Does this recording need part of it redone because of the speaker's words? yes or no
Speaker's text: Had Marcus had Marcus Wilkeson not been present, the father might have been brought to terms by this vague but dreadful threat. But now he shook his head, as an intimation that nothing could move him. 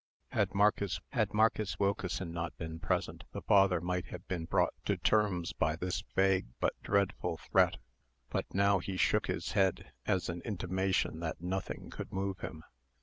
no